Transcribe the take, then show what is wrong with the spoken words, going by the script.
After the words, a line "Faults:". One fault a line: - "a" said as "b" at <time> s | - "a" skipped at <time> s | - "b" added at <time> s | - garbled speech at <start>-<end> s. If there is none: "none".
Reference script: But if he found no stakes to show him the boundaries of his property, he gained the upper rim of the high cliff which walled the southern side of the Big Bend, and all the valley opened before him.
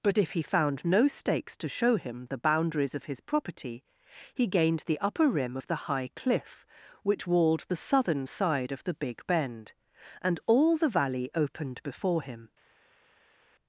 But if he found no stakes to show him the boundaries of his property, he gained the upper rim of the high cliff which walled the southern side of the Big Bend, and all the valley opened before him.
Faults:
none